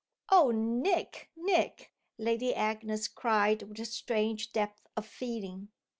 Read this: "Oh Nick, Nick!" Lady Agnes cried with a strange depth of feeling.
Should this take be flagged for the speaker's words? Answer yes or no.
no